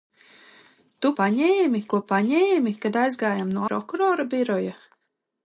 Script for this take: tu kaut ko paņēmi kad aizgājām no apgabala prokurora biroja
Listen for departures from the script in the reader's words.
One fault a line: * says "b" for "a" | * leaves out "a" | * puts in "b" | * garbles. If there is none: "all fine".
* says "paņēmi" for "kaut"
* leaves out "apgabala"